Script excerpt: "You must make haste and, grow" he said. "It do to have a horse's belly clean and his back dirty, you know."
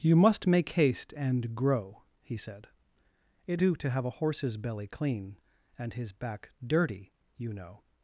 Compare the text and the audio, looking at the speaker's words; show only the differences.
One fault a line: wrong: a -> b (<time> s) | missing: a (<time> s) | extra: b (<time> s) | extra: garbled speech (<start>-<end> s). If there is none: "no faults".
no faults